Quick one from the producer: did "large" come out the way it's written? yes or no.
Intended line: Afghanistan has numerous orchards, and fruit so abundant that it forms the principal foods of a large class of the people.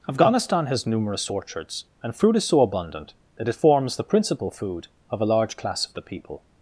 yes